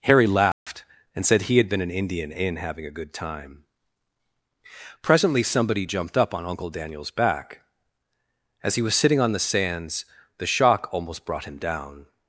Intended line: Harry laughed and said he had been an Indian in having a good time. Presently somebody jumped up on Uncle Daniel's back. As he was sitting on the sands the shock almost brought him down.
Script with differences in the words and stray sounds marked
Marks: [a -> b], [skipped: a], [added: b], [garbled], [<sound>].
Harry laughed [dropout] and said he had been an Indian in having a good time. Presently somebody jumped up on Uncle Daniel's back. As he was sitting on the sands the shock almost brought him down.